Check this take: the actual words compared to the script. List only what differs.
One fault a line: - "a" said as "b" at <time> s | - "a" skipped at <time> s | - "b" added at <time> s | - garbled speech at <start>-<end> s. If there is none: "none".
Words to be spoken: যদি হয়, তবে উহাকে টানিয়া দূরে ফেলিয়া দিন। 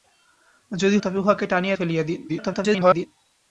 - "হয়" skipped at 1.0 s
- "দূরে" skipped at 1.8 s
- garbled speech at 2.3-3.1 s